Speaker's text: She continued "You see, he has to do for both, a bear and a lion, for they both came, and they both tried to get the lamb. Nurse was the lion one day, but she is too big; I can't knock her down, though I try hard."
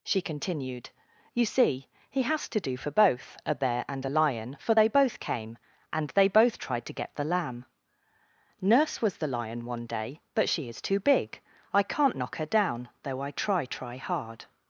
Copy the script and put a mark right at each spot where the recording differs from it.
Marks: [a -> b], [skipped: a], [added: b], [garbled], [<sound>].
She continued "You see, he has to do for both, a bear and a lion, for they both came, and they both tried to get the lamb. Nurse was the lion one day, but she is too big; I can't knock her down, though I try [added: try] hard."